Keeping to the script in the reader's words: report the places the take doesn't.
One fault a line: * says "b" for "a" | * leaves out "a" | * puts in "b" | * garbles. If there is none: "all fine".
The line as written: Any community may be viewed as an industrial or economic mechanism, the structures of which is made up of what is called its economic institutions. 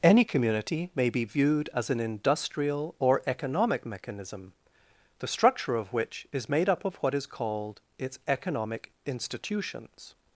* says "structure" for "structures"